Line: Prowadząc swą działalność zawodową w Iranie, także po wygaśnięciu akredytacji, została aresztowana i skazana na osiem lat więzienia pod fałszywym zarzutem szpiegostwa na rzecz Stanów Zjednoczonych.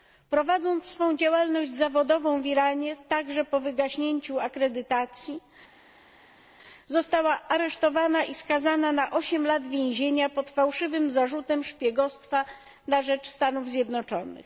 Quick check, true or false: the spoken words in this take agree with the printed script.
true